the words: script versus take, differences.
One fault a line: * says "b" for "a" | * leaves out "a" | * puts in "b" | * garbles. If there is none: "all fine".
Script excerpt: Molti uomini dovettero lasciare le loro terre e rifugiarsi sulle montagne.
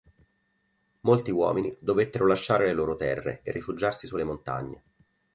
all fine